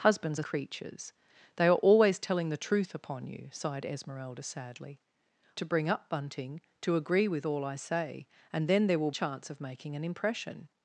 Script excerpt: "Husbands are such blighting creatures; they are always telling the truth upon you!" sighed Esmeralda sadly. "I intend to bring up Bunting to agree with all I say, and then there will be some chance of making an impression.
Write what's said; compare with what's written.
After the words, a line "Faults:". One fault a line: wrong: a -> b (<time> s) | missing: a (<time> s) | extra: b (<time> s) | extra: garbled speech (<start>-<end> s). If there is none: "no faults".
"Husbands are creatures; they are always telling the truth upon you!" sighed Esmeralda sadly. "to bring up Bunting to agree with all I say, and then there will chance of making an impression.
Faults:
missing: such blighting (0.4 s)
missing: I intend (5.0 s)
missing: be some (9.1 s)